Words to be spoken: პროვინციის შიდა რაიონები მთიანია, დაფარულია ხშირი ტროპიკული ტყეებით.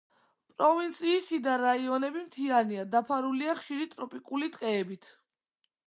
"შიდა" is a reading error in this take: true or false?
false